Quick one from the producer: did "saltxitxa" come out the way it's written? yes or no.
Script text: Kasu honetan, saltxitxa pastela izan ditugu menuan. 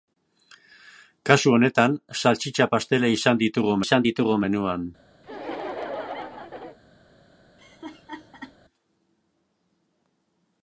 yes